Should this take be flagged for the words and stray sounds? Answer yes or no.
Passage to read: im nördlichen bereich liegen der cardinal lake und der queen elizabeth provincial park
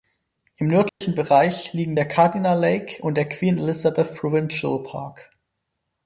yes